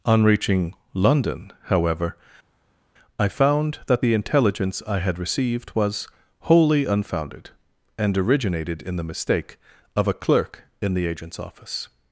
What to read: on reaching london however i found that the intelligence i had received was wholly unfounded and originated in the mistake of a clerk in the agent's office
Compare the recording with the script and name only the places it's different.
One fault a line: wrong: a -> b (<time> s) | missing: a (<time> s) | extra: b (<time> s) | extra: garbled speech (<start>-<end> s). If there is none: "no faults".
no faults